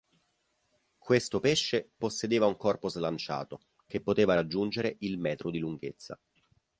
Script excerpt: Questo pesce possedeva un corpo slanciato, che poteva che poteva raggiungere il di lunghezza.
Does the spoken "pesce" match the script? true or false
true